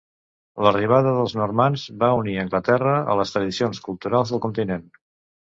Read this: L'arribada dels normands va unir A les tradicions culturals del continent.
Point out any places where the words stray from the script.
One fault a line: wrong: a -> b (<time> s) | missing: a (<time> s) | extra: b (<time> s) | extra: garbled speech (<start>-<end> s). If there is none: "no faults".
extra: Anglaterra (2.4 s)